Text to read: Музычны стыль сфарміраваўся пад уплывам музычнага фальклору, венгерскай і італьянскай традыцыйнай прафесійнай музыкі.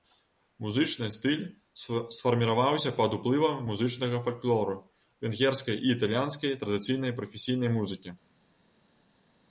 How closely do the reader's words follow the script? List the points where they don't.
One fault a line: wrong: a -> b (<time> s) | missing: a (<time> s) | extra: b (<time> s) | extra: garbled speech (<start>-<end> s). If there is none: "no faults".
no faults